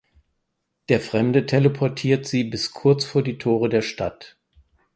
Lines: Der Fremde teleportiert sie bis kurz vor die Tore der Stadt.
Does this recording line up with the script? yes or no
yes